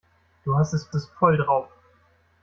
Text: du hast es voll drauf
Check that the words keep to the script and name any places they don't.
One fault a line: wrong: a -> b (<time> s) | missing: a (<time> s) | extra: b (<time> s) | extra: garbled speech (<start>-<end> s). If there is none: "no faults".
extra: es (0.9 s)